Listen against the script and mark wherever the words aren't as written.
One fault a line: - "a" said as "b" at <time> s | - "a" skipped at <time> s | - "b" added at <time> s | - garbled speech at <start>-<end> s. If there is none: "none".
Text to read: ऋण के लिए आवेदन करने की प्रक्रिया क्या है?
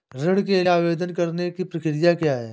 - "लिए" skipped at 0.6 s